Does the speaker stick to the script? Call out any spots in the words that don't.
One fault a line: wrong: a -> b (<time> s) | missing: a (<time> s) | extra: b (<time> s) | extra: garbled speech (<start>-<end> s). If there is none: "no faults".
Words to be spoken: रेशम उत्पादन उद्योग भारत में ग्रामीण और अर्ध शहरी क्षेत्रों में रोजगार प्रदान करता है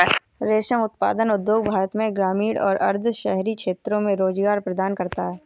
no faults